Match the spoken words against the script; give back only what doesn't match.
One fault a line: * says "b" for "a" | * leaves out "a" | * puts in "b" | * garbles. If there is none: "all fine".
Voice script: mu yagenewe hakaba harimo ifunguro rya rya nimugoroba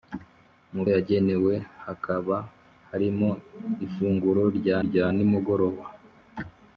all fine